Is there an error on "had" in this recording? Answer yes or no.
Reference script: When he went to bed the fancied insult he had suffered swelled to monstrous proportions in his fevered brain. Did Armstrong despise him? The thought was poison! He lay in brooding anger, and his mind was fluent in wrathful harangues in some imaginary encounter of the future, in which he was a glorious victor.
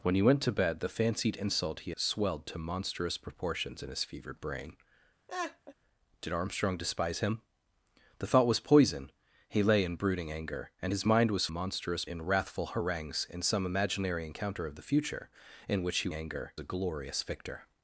yes